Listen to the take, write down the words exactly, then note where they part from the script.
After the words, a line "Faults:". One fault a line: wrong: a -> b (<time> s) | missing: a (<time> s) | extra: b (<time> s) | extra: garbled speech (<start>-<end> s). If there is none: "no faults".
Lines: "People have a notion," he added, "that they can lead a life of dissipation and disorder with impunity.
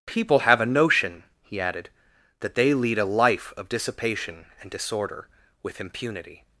"People have a notion," he added, "that they lead a life of dissipation and disorder with impunity.
Faults:
missing: can (2.7 s)